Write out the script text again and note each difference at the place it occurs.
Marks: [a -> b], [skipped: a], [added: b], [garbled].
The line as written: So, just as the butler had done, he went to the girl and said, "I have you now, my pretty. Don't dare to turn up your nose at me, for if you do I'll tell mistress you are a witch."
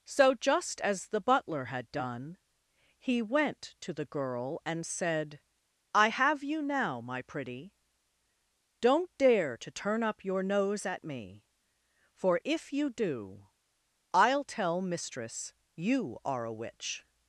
So, just as the butler had done, he went to the girl and said, "I have you now, my pretty. Don't dare to turn up your nose at me, for if you do I'll tell mistress you are a witch."